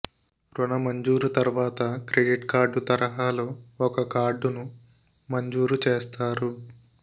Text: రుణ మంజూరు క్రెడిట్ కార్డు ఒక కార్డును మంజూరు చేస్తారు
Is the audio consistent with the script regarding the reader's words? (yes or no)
no